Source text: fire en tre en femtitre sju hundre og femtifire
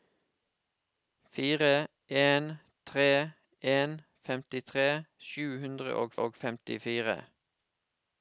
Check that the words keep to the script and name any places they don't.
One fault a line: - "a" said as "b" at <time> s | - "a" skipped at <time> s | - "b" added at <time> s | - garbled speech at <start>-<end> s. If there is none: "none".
- "og" added at 6.3 s